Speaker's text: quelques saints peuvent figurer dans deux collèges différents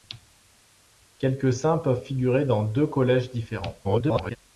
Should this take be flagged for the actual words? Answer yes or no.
yes